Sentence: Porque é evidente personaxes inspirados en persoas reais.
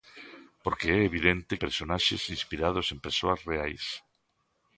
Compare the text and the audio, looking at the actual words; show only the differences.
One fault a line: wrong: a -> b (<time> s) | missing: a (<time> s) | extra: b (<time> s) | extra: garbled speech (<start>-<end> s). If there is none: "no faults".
no faults